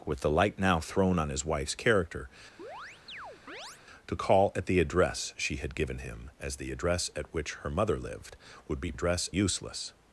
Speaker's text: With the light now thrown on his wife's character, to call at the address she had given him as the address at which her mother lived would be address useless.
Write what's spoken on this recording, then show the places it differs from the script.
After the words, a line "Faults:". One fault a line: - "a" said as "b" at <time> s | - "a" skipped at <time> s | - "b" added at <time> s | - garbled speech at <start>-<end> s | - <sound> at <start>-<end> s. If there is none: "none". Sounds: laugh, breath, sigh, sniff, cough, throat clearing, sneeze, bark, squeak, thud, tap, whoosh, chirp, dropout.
With the light now thrown on his wife's character, to call at the address she had given him as the address at which her mother lived would be address useless.
Faults:
- chirp at 2.6-3.8 s